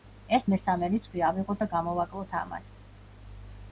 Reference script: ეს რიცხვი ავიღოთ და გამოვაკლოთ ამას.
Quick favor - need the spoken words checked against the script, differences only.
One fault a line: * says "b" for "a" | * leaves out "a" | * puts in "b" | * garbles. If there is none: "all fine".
* puts in "მესამე"